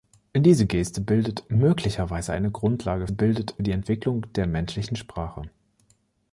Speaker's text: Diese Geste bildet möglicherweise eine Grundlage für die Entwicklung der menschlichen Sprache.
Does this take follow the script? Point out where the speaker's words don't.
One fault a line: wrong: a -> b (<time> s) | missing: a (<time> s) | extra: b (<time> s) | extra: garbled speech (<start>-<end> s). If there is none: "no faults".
wrong: für -> bildet (3.1 s)